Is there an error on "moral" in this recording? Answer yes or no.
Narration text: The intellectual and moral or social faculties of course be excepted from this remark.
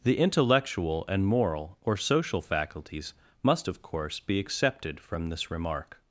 no